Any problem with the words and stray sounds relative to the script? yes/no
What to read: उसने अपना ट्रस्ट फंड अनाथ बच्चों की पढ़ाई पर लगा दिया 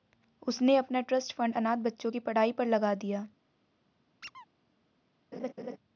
yes